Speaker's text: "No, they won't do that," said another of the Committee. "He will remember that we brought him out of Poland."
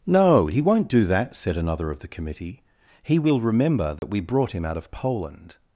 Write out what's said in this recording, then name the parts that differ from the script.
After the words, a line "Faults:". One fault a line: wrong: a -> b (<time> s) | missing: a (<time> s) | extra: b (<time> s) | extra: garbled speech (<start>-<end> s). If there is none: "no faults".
"No, he won't do that," said another of the Committee. "He will remember that we brought him out of Poland."
Faults:
wrong: they -> he (0.5 s)